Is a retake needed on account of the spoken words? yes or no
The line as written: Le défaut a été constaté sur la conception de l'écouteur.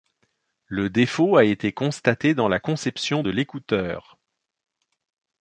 yes